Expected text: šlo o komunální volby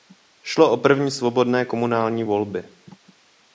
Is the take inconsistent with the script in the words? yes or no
yes